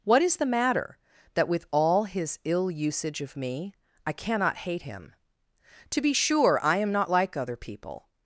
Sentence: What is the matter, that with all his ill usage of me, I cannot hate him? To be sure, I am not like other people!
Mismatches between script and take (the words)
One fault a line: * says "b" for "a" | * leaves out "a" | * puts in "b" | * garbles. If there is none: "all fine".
all fine